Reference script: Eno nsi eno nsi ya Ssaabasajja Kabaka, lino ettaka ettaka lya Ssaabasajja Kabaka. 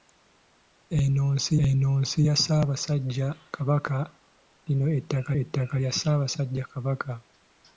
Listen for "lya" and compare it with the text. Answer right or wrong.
right